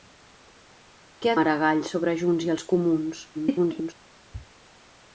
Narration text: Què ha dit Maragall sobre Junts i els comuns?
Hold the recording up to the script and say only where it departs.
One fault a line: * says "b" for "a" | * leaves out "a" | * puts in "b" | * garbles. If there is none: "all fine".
* leaves out "dit"
* garbles